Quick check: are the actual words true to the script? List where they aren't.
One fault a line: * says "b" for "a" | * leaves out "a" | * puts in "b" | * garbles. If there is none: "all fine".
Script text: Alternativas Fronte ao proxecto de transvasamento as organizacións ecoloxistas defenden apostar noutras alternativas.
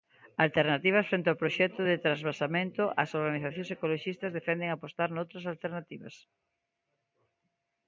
all fine